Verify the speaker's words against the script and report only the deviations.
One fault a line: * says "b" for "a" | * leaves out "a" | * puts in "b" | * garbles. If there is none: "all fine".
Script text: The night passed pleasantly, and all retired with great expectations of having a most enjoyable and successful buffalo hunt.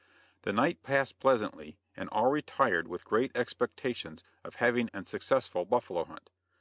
* leaves out "a most enjoyable"